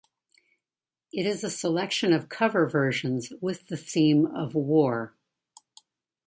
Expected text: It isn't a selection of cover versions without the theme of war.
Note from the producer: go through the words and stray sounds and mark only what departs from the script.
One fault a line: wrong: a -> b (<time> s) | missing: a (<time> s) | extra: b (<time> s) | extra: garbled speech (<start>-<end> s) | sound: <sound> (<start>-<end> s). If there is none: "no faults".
wrong: isn't -> is (1.3 s)
wrong: without -> with (3.4 s)